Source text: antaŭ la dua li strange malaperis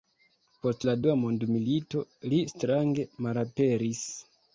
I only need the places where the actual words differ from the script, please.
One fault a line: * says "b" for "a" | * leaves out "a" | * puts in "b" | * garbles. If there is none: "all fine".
* says "post" for "antaŭ"
* puts in "mondmilito"